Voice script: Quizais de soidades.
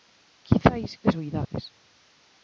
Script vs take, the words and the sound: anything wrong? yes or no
yes